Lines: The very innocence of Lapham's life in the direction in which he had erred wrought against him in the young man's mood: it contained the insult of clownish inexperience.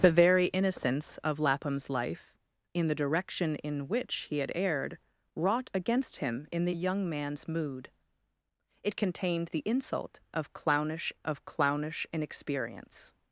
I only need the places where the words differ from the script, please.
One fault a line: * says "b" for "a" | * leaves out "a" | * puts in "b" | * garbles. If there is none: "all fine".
* puts in "of clownish"